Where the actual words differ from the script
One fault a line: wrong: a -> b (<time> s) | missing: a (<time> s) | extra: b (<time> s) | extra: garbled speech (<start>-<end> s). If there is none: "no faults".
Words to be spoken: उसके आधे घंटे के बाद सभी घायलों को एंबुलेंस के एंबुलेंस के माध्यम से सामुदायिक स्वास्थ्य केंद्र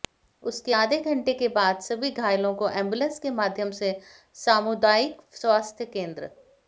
missing: एंबुलेंस के (3.3 s)